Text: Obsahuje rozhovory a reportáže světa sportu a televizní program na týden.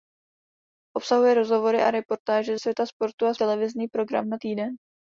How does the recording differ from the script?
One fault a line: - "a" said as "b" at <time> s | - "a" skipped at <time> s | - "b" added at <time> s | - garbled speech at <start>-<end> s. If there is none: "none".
none